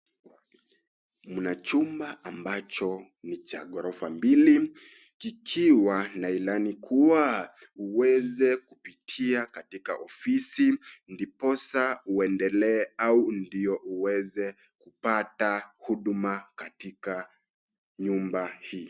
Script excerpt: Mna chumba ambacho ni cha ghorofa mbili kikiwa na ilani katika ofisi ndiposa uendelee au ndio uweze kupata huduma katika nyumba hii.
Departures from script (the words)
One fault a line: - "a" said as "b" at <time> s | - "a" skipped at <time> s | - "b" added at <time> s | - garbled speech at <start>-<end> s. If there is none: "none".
- "kuwa uweze kupitia" added at 6.7 s